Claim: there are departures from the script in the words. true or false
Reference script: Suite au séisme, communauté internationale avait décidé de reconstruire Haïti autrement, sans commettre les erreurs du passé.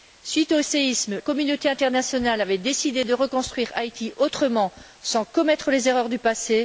false